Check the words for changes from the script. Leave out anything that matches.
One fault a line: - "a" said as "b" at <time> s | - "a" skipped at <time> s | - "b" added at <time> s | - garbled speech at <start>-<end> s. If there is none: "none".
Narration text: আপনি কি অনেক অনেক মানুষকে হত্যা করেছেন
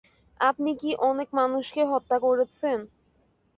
- "অনেক" skipped at 1.3 s